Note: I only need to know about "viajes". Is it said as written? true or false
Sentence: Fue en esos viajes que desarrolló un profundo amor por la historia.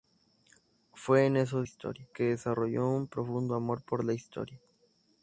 false